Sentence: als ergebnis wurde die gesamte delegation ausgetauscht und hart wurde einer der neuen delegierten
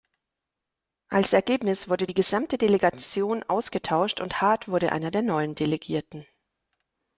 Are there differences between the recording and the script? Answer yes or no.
no